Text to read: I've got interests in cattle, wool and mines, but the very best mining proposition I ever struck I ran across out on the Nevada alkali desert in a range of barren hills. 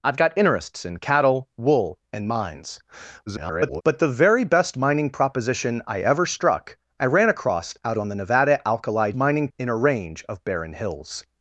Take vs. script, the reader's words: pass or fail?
fail